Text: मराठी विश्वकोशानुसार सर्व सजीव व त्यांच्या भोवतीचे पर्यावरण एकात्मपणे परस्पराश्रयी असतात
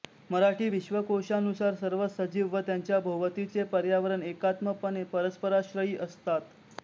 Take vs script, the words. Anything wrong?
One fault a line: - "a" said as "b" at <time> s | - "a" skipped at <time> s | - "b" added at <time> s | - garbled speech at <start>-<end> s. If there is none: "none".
none